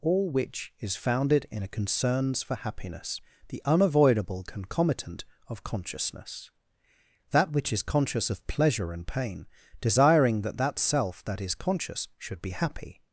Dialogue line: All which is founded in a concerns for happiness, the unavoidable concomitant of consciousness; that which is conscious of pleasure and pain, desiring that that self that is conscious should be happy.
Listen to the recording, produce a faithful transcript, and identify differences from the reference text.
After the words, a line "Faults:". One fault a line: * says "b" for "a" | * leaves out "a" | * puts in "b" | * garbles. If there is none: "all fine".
All which is founded in a concerns for happiness, the unavoidable concomitant of consciousness; that which is conscious of pleasure and pain, desiring that that self that is conscious should be happy.
Faults:
all fine